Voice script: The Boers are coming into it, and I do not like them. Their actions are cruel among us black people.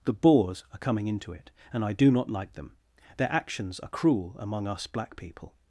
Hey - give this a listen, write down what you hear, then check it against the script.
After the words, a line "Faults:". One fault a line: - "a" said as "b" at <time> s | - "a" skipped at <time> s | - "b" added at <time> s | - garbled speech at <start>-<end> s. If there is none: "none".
The Boers are coming into it, and I do not like them. Their actions are cruel among us black people.
Faults:
none